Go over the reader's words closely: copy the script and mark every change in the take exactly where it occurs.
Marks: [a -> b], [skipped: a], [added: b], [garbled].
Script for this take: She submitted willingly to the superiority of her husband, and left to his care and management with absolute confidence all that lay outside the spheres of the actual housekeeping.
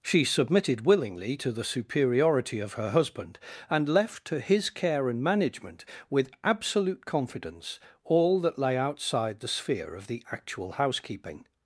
She submitted willingly to the superiority of her husband, and left to his care and management with absolute confidence all that lay outside the [spheres -> sphere] of the actual housekeeping.